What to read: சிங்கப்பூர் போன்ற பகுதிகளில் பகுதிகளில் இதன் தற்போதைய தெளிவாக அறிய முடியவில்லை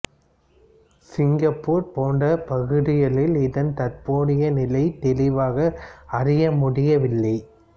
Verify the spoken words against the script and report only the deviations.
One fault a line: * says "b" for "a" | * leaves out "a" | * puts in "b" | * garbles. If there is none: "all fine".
* leaves out "பகுதிகளில்"
* puts in "நிலை"